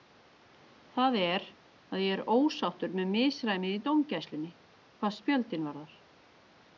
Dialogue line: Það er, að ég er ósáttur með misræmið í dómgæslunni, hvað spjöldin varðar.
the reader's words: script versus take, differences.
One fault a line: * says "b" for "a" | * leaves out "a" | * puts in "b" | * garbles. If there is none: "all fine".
all fine